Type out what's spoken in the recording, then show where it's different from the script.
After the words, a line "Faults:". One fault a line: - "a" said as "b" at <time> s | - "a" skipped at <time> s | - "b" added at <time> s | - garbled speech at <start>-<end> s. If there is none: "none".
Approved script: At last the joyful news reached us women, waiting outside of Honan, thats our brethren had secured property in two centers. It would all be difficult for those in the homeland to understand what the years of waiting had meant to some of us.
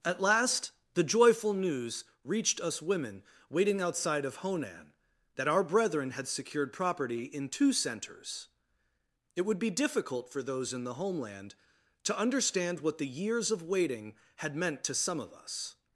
At last the joyful news reached us women, waiting outside of Honan, that our brethren had secured property in two centers. It would be difficult for those in the homeland to understand what the years of waiting had meant to some of us.
Faults:
- "thats" said as "that" at 5.3 s
- "all" skipped at 9.6 s